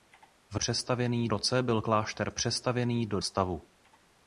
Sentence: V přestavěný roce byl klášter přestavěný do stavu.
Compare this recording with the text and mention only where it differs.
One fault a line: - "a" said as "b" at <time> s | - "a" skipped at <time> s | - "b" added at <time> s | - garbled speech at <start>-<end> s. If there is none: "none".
none